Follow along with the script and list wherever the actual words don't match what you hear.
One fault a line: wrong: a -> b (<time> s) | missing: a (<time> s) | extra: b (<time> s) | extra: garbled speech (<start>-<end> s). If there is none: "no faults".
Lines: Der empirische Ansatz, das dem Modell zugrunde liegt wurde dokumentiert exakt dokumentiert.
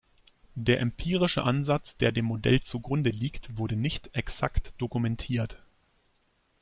wrong: das -> der (2.0 s)
wrong: dokumentiert -> nicht (3.8 s)